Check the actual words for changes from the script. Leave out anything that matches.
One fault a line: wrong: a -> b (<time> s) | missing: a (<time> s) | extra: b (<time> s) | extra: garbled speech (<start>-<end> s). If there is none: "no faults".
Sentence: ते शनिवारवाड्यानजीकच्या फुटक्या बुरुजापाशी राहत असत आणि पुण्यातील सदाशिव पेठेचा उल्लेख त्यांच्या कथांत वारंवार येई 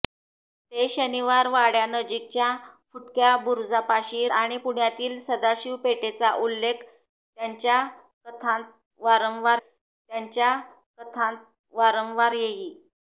missing: राहत असत (4.3 s)
extra: त्यांच्या कथांत वारंवार (9.6 s)